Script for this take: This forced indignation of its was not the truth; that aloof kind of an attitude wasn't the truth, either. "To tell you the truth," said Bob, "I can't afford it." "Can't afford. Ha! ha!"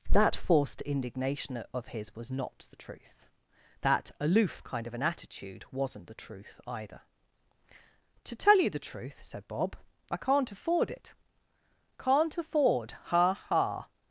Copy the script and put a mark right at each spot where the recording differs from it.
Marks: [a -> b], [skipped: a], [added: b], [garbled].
[This -> That] forced indignation of [its -> his] was not the truth; that aloof kind of an attitude wasn't the truth, either. "To tell you the truth," said Bob, "I can't afford it." "Can't afford. Ha! ha!"